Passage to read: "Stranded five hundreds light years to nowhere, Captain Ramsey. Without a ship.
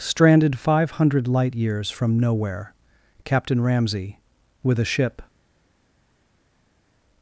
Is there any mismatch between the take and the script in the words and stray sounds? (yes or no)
yes